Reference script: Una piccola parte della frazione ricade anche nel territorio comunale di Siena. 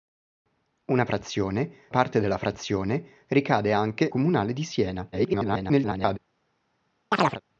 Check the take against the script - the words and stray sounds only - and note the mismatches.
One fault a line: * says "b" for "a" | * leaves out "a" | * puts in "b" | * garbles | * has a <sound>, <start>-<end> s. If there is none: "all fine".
* says "frazione" for "piccola"
* leaves out "nel territorio"
* garbles
* has a chirp, 7.1-7.4 s